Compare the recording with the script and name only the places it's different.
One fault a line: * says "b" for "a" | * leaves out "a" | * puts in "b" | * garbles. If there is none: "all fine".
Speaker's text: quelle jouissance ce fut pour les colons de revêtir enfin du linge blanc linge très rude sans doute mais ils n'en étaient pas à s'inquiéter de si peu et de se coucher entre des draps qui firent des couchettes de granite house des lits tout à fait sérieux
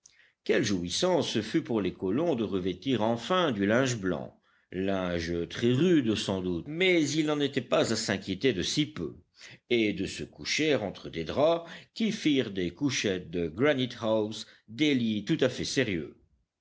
all fine